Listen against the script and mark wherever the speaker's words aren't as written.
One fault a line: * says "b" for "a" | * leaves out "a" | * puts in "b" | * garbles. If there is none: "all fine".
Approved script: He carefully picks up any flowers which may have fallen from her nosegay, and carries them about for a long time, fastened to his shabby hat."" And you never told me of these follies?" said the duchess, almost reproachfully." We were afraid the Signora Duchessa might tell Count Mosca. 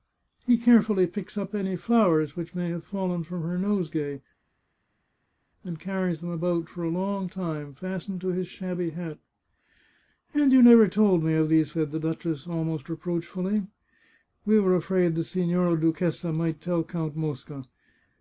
* leaves out "follies"